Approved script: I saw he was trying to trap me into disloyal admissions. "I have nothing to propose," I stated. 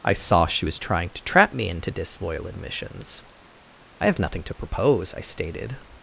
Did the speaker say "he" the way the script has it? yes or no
no